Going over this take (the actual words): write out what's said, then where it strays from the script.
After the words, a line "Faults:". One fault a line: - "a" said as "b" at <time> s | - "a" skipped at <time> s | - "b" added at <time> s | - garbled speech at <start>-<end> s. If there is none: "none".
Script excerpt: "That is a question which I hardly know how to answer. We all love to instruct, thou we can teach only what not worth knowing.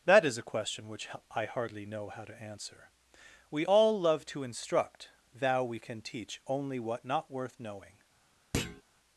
"That is a question which I hardly know how to answer. We all love to instruct, thou we can teach only what not worth knowing.
Faults:
none